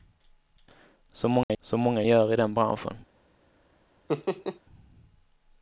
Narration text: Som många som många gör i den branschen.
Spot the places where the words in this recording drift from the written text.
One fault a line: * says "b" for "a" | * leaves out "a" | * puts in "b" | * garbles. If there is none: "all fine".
all fine